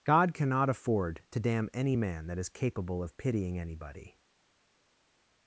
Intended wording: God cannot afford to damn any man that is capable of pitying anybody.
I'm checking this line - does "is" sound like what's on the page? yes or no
yes